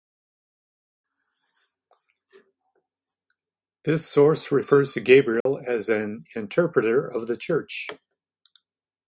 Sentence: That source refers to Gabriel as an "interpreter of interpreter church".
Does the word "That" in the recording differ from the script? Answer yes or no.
yes